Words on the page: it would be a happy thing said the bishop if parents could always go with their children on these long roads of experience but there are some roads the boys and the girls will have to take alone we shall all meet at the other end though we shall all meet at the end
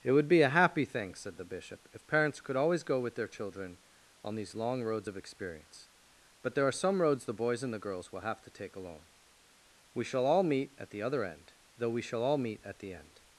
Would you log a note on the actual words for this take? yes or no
no